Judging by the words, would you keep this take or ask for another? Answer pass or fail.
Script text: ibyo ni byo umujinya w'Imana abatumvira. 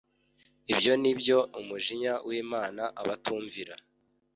pass